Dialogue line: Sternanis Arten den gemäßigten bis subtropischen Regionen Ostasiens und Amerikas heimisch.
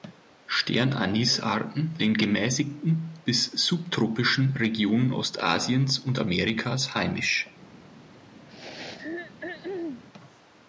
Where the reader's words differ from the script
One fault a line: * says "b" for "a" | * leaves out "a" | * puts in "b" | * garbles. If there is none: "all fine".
all fine